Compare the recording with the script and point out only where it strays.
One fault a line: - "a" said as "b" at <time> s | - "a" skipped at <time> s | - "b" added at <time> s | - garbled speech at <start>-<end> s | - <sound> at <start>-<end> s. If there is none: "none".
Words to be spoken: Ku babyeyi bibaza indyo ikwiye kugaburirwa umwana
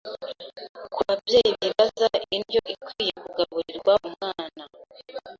none